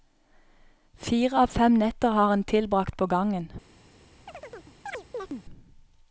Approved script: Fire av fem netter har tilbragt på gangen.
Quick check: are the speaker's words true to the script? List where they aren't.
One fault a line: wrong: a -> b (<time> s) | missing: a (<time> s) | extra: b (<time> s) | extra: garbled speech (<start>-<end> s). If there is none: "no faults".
extra: han (2.3 s)